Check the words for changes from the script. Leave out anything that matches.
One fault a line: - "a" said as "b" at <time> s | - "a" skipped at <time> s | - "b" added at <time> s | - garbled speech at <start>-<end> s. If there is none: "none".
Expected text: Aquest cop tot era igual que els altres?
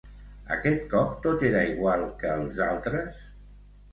none